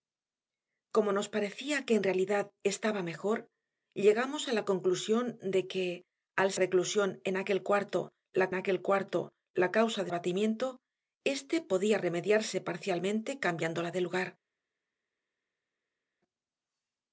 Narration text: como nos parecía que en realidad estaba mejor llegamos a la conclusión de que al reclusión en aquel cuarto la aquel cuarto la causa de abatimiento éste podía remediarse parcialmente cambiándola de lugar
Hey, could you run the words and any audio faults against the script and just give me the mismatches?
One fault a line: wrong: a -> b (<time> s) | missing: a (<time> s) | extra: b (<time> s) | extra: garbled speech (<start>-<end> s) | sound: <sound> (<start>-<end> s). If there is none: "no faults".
no faults